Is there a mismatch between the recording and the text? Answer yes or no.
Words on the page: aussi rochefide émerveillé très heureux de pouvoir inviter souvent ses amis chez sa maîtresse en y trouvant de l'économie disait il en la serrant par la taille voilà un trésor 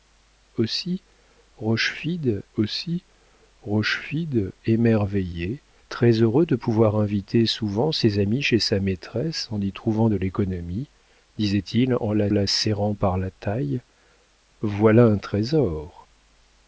yes